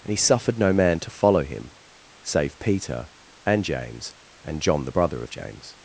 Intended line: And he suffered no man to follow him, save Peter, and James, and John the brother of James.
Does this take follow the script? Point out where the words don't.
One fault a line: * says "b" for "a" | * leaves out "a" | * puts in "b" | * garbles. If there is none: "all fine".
all fine